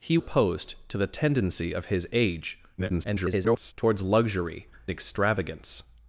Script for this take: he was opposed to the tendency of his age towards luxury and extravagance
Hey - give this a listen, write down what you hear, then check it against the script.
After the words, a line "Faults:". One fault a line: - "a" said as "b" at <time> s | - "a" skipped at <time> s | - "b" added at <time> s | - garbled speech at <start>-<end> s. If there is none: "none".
he opposed to the tendency of his age [garbled] towards luxury extravagance
Faults:
- "was" skipped at 0.2 s
- garbled speech at 2.8-3.7 s
- "and" skipped at 4.7 s